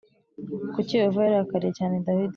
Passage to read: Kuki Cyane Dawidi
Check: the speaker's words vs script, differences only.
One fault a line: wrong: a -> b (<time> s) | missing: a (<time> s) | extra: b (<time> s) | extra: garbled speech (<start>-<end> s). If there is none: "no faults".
extra: Yehova yarakariye (1.0 s)